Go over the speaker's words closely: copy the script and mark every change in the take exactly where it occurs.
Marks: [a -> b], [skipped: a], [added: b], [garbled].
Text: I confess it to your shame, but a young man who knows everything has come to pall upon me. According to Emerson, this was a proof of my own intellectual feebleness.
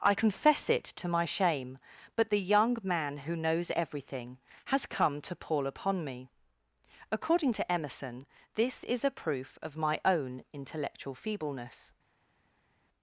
I confess it to [your -> my] shame, but [a -> the] young man who knows everything has come to pall upon me. According to Emerson, this [was -> is] a proof of my own intellectual feebleness.